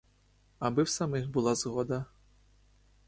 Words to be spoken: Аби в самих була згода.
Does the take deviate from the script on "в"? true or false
false